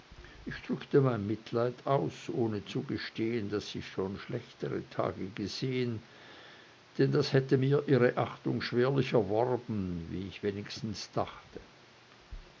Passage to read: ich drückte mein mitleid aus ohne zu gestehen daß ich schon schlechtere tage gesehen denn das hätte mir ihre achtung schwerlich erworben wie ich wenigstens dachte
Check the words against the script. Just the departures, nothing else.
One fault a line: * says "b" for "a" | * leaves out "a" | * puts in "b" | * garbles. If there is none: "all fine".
all fine